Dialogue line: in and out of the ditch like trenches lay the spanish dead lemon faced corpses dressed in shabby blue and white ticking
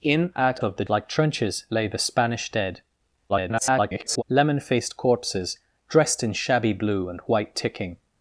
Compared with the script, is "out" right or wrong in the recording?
wrong